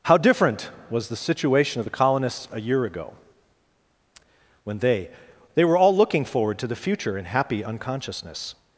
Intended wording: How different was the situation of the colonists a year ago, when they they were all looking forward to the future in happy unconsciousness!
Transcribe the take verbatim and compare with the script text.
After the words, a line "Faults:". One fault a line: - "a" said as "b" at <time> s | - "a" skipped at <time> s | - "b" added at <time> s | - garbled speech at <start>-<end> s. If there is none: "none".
How different was the situation of the colonists a year ago, when they they were all looking forward to the future in happy unconsciousness!
Faults:
none